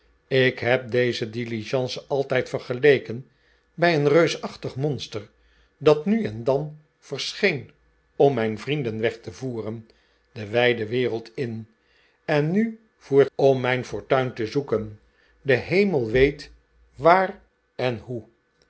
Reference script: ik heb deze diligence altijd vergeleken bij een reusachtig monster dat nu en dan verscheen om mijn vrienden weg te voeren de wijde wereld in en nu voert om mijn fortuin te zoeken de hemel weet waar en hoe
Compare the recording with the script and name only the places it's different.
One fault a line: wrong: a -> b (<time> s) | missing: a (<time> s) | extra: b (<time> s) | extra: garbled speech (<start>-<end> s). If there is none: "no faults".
no faults